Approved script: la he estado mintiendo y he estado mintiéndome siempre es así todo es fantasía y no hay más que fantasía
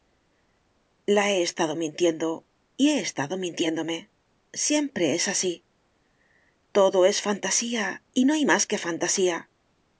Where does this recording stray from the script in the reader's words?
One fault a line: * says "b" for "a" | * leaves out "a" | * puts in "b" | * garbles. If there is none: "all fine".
all fine